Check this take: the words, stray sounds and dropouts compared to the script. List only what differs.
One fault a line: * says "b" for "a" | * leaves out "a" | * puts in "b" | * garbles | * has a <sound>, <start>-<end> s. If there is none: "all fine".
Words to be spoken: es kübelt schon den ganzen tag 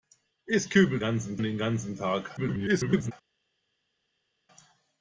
* says "ganzen" for "schon"
* garbles